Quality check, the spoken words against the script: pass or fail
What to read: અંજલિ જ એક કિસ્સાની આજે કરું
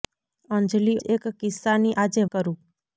pass